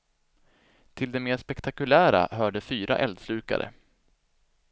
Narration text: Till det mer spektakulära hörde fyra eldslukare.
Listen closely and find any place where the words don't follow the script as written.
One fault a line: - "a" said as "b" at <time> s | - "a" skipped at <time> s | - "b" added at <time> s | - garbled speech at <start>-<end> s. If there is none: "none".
none